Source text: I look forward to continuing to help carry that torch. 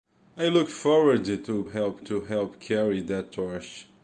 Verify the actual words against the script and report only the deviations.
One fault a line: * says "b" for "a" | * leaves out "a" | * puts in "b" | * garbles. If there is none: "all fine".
* says "help" for "continuing"